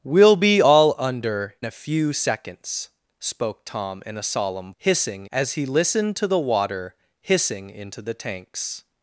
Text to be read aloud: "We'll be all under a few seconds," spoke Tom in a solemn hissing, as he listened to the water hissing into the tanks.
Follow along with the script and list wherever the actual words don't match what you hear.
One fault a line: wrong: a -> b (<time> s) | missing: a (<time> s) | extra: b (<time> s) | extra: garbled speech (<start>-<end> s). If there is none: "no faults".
no faults